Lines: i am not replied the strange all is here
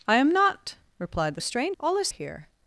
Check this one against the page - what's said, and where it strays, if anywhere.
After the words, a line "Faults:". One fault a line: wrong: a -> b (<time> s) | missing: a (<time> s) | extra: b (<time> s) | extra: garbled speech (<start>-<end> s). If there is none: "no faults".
i am not replied the strange all is here
Faults:
no faults